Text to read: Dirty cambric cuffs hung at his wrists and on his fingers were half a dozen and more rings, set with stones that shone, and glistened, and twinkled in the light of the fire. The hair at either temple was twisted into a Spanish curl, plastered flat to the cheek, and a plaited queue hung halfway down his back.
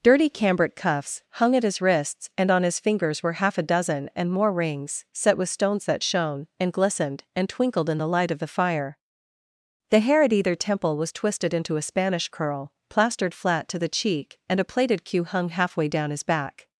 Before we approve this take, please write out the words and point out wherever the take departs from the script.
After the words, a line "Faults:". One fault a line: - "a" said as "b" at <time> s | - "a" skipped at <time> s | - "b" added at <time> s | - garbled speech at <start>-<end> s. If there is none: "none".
Dirty cambric cuffs hung at his wrists and on his fingers were half a dozen and more rings, set with stones that shone, and glistened, and twinkled in the light of the fire. The hair at either temple was twisted into a Spanish curl, plastered flat to the cheek, and a plaited queue hung halfway down his back.
Faults:
none